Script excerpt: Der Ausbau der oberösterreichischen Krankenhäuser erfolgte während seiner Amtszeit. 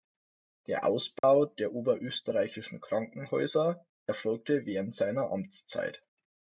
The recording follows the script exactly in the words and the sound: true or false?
false